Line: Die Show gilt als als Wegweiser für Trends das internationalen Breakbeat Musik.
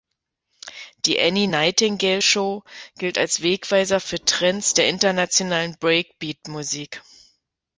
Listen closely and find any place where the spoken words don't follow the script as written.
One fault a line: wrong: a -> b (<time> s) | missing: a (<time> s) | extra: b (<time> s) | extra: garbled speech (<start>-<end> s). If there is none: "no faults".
extra: Annie Nightingale (1.2 s)
missing: als (3.4 s)
wrong: das -> der (4.7 s)